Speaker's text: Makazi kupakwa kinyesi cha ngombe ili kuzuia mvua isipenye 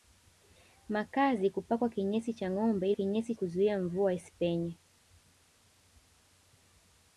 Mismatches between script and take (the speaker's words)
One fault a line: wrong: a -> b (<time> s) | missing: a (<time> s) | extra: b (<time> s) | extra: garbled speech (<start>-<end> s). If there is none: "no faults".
wrong: ili -> kinyesi (2.9 s)